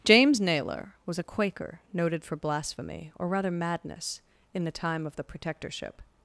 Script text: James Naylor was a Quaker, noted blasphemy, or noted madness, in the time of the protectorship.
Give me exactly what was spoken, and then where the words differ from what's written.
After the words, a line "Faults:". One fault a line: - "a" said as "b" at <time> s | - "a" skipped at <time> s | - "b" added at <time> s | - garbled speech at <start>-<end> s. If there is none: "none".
James Naylor was a Quaker, noted for blasphemy, or rather madness, in the time of the protectorship.
Faults:
- "for" added at 2.2 s
- "noted" said as "rather" at 3.3 s